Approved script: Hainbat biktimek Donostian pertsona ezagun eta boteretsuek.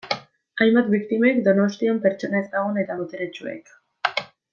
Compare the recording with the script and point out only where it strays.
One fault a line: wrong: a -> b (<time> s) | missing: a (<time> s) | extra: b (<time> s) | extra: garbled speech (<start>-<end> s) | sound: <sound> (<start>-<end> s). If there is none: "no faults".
no faults